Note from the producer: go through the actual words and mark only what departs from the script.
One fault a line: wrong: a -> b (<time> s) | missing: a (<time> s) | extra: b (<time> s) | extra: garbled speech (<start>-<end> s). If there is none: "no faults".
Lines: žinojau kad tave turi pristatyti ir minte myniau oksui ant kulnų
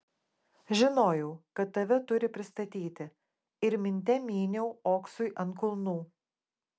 no faults